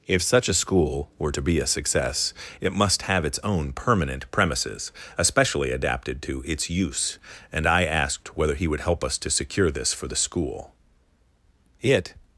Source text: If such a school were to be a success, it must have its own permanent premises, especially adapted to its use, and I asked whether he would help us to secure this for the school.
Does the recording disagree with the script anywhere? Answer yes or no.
yes